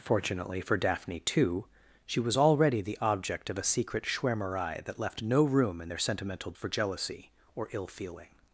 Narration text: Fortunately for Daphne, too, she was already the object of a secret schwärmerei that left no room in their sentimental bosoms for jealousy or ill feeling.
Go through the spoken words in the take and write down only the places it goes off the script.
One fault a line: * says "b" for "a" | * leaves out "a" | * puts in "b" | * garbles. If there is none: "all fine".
* leaves out "bosoms"